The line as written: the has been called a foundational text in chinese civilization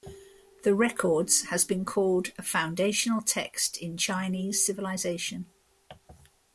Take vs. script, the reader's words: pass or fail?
fail